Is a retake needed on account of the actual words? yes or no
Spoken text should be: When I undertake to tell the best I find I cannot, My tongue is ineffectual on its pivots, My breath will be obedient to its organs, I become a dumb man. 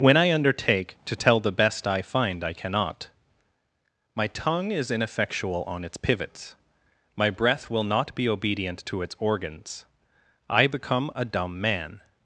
yes